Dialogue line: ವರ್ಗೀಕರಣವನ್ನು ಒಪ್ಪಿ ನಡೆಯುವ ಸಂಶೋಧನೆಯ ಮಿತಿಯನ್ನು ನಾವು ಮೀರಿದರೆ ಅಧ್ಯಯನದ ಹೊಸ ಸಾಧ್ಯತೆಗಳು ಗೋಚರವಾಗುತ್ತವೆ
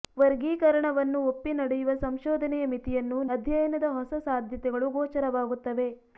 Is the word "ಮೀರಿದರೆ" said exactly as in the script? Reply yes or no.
no